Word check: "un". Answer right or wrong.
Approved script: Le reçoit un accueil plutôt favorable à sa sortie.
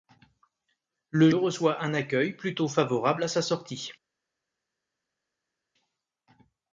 right